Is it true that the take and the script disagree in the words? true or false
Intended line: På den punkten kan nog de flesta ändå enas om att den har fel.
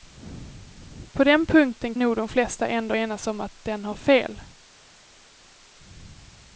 true